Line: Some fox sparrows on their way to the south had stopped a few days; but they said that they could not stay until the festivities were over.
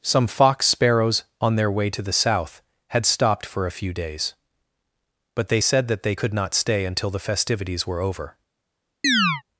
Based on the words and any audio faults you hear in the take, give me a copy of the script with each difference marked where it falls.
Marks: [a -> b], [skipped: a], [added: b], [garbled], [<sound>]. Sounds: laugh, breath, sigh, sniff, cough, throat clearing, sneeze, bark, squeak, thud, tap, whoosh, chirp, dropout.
Some fox sparrows on their way to the south had stopped [added: for] a few days; but they said that they could not stay until the festivities were over. [chirp]